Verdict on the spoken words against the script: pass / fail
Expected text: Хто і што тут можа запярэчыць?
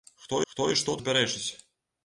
fail